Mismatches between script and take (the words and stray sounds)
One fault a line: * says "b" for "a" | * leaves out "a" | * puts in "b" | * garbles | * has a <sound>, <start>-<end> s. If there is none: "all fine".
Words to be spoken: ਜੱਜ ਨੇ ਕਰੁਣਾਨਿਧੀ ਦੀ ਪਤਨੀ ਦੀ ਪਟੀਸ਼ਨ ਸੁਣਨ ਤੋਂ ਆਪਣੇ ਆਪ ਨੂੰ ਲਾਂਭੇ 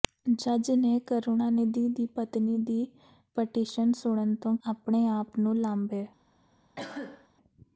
* has a cough, 6.8-7.3 s